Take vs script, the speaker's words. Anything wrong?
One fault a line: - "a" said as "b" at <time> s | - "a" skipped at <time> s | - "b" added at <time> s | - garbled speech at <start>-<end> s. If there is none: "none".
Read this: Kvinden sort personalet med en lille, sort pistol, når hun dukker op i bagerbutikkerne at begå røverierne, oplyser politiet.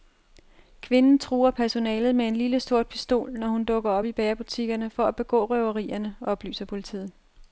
- "sort" said as "truer" at 1.2 s
- "for" added at 4.9 s